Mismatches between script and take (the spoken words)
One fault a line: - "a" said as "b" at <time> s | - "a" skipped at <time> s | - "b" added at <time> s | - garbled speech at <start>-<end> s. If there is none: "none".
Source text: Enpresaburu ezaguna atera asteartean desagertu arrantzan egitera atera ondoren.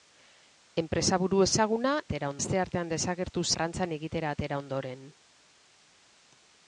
none